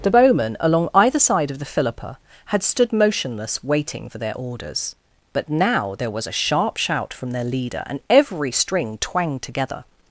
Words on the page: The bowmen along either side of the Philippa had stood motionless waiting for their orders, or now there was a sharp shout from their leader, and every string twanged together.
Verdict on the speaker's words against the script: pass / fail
fail